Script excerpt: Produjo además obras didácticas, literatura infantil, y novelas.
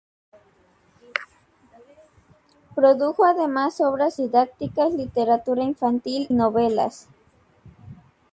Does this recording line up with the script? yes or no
no